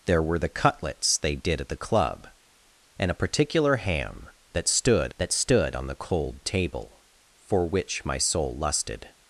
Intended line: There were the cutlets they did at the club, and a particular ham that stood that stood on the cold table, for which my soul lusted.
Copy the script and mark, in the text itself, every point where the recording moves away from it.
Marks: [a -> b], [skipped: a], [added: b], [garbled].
There were the cutlets they did at the club, and a particular ham that stood that stood on the cold table, for which my soul lusted.